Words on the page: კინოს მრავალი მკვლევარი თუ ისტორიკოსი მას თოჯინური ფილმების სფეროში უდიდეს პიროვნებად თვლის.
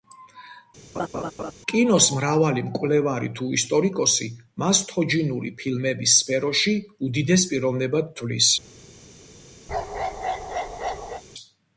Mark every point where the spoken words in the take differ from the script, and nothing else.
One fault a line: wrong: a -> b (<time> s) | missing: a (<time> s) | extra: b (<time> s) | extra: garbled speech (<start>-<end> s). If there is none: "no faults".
no faults